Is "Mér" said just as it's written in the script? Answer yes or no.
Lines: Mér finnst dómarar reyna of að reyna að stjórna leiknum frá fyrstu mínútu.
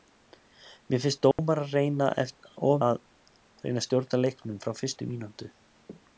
yes